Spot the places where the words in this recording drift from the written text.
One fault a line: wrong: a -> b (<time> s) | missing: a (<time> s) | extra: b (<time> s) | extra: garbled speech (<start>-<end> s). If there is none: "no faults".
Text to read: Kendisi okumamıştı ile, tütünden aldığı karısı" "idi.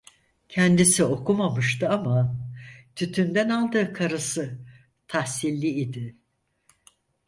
wrong: ile -> ama (1.9 s)
extra: tahsilli (5.1 s)